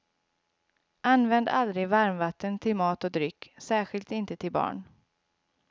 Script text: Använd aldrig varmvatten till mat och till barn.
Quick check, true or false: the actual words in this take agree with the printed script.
false